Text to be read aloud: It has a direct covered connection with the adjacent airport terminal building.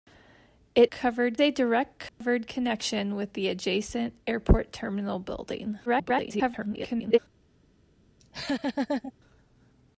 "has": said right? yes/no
no